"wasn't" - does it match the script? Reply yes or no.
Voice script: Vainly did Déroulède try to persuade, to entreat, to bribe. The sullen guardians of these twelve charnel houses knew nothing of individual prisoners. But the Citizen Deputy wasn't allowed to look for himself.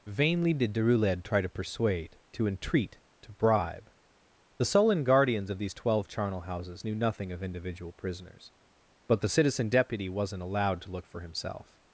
yes